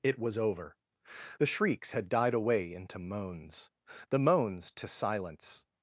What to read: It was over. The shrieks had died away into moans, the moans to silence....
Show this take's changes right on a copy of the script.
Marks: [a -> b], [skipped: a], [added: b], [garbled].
It was over. The shrieks had died away into moans, the moans to silence....